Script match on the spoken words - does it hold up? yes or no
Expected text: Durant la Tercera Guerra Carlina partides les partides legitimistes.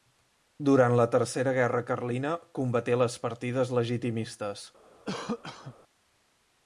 no